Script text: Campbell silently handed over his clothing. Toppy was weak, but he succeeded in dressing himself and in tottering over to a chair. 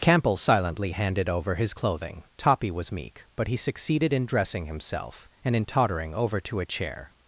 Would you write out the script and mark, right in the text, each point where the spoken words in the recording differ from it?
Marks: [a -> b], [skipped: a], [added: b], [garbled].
Campbell silently handed over his clothing. Toppy was [weak, -> meek] but he succeeded in dressing himself and in tottering over to a chair.